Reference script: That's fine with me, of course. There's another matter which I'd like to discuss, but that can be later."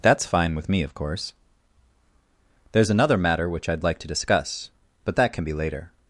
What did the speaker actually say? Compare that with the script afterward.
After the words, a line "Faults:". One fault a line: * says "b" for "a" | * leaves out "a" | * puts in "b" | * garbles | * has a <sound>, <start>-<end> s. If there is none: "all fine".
That's fine with me, of course. There's another matter which I'd like to discuss, but that can be later."
Faults:
all fine